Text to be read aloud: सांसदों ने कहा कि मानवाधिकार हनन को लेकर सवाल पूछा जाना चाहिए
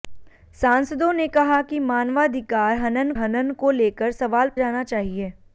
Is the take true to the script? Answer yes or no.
no